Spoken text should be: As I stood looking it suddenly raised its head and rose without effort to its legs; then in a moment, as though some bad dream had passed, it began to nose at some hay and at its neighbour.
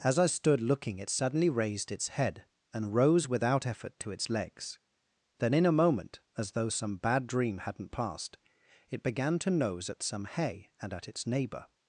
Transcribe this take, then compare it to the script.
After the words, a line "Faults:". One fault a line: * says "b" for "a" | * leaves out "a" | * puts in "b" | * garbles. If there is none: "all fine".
As I stood looking it suddenly raised its head and rose without effort to its legs; then in a moment, as though some bad dream hadn't passed, it began to nose at some hay and at its neighbour.
Faults:
* says "hadn't" for "had"